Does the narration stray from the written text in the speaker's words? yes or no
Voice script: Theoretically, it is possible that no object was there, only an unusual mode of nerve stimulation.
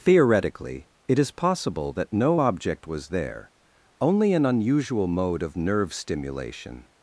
no